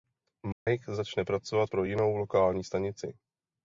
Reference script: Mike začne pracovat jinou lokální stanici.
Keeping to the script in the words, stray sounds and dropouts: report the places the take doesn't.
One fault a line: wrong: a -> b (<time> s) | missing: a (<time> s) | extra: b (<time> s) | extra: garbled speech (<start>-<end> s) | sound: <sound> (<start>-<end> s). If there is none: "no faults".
sound: dropout (0.5-0.7 s)
extra: pro (1.7 s)